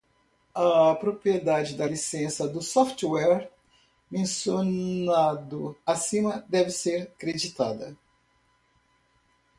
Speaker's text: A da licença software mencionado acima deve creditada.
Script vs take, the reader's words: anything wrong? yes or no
yes